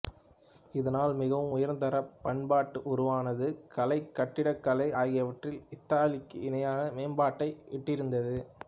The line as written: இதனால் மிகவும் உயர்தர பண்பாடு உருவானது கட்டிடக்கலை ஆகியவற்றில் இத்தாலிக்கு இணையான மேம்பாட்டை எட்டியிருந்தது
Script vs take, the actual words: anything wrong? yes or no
yes